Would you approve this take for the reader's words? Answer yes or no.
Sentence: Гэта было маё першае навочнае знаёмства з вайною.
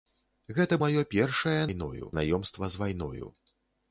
no